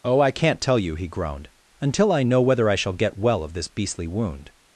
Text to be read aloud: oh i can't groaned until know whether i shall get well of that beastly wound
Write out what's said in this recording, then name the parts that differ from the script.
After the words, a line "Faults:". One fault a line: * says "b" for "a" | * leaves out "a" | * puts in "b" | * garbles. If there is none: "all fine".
oh i can't tell you he groaned until i know whether i shall get well of this beastly wound
Faults:
* puts in "tell you he"
* puts in "i"
* says "this" for "that"